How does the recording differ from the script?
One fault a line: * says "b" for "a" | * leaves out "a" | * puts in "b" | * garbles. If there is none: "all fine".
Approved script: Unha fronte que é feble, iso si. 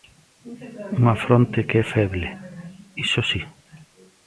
all fine